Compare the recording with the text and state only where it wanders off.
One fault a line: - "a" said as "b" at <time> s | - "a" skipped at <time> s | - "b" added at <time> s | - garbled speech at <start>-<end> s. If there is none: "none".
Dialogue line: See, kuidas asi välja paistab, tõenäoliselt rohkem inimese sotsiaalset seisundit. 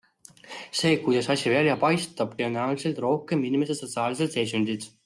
none